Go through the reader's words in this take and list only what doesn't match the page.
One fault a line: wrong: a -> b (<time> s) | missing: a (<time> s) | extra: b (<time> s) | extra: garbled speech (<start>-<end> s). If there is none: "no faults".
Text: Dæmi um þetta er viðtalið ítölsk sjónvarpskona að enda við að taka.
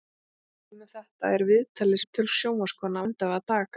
no faults